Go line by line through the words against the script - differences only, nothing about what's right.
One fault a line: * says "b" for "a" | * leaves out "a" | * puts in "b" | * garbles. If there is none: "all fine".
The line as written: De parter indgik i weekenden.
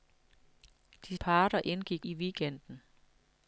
all fine